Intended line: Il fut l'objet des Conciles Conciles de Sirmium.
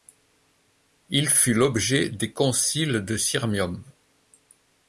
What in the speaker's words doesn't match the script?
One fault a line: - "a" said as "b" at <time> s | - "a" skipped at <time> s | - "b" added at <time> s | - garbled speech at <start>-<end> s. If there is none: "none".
- "Conciles" skipped at 3.0 s